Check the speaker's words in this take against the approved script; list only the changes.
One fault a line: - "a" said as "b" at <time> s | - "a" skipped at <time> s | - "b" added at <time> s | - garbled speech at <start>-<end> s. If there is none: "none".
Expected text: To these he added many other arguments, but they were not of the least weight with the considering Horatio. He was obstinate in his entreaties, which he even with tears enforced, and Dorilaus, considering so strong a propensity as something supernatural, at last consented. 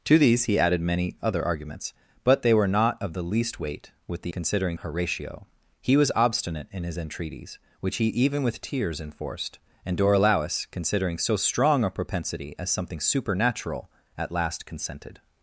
none